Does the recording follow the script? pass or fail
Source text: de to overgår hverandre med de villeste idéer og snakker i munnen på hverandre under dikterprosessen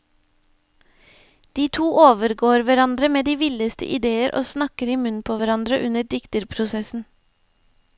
pass